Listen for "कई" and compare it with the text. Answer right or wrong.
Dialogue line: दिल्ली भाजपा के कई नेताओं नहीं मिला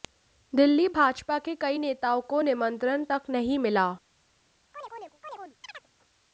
right